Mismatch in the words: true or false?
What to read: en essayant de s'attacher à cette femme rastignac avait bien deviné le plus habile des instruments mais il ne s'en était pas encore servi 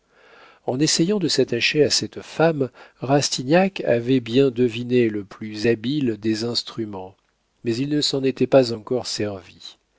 false